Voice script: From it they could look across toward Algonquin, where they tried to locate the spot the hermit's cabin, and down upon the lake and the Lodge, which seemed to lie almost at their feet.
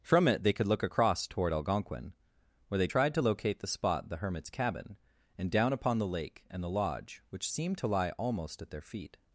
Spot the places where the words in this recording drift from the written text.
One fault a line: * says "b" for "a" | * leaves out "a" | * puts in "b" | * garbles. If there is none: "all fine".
all fine